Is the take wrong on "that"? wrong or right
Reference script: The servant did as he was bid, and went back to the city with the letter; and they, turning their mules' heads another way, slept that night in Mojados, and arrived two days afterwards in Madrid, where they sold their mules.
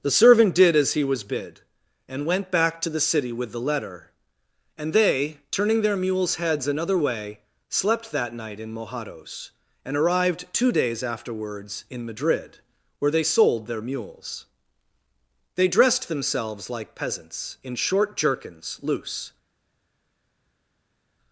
right